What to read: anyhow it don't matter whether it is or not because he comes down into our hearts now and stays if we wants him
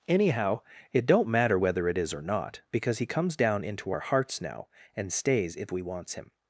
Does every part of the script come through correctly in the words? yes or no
yes